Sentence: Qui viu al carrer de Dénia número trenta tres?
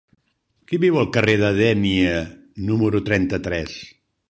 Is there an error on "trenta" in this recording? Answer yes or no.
no